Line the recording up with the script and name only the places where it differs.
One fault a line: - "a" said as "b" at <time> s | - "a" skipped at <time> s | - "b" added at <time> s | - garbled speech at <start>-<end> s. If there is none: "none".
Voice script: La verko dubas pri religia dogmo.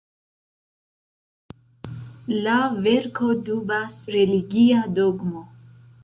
- "pri" skipped at 4.0 s